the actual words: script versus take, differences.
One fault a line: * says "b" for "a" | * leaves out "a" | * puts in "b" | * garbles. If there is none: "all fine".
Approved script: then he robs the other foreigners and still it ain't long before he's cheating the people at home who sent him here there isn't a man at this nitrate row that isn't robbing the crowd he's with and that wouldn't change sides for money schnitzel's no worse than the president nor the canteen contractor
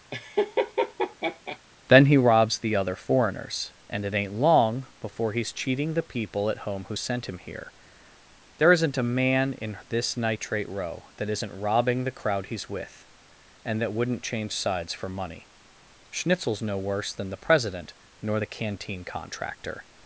* leaves out "still"
* says "in" for "at"